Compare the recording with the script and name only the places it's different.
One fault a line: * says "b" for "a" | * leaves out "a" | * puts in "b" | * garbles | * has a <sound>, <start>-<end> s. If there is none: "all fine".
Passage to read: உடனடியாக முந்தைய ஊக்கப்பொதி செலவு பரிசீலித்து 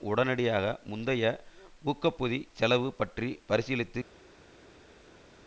* puts in "பற்றி"